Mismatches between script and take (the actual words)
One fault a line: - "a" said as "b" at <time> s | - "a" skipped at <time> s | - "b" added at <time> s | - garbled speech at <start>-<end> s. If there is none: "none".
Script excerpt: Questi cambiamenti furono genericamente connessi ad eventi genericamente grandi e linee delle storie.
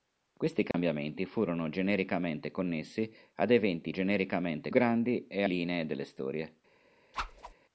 none